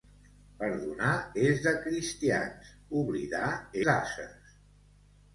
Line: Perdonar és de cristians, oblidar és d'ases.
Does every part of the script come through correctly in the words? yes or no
no